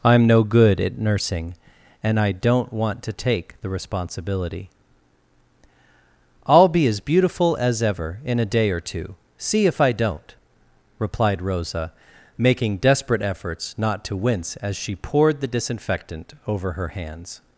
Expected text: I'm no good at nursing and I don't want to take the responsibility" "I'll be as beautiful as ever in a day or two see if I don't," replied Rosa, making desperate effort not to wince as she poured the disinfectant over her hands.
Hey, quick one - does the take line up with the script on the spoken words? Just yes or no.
no